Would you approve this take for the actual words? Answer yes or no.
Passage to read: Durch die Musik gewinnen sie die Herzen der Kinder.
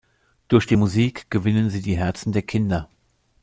yes